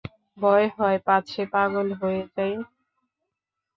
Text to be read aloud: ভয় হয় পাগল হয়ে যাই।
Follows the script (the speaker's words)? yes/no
no